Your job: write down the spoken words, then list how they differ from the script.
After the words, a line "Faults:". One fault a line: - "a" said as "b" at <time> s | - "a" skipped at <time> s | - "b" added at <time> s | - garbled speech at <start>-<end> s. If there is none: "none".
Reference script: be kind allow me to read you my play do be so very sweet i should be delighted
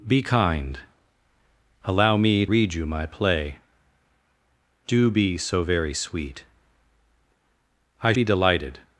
be kind allow me read you my play do be so very sweet i be delighted
Faults:
- "to" skipped at 2.5 s
- "should" skipped at 8.1 s